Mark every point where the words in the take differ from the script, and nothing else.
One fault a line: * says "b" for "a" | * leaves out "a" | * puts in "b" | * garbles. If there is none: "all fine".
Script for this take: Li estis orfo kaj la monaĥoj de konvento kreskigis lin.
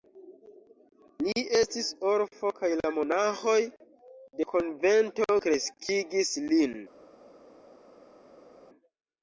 all fine